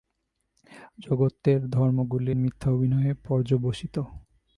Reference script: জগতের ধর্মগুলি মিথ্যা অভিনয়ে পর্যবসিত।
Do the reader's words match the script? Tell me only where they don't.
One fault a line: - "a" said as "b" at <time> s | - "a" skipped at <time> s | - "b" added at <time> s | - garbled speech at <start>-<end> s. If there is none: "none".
none